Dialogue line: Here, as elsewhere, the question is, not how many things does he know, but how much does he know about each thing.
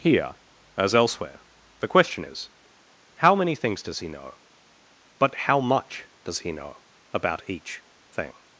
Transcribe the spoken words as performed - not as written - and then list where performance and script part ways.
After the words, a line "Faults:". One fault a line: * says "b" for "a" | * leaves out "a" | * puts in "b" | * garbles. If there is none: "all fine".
Here, as elsewhere, the question is, how many things does he know, but how much does he know about each thing.
Faults:
* leaves out "not"